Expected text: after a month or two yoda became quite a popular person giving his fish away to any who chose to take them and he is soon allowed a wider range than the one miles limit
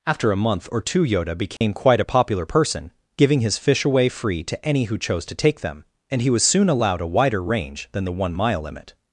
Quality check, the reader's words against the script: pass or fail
fail